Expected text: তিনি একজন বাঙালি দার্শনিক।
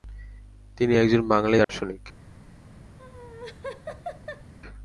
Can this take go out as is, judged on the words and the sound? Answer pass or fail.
fail